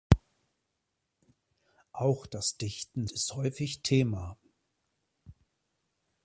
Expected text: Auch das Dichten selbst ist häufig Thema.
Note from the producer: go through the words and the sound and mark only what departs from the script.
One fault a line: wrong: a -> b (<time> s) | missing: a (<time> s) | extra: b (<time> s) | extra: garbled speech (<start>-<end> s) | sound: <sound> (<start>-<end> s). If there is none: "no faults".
missing: selbst (3.0 s)